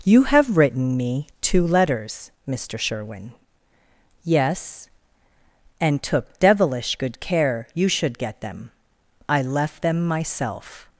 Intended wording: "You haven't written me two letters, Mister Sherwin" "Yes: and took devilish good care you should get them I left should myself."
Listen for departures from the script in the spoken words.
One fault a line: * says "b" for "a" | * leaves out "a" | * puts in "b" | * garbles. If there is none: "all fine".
* says "have" for "haven't"
* says "them" for "should"